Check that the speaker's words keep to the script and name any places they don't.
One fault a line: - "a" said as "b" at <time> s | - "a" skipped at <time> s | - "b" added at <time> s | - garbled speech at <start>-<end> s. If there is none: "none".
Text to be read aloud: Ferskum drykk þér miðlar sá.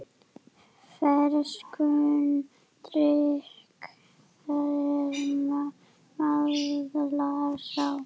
none